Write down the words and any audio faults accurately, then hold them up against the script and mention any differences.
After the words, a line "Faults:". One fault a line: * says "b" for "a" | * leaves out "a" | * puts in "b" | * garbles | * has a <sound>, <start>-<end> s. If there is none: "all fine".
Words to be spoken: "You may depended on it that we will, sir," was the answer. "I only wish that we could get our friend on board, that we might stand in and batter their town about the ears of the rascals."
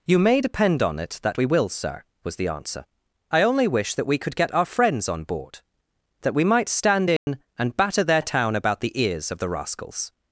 "You may depend on it that we will, sir," was the answer. "I only wish that we could get our friends on board, that we might stand in and batter their town about the ears of the rascals."
Faults:
* says "depend" for "depended"
* says "friends" for "friend"
* has a dropout, 7.2-7.3 s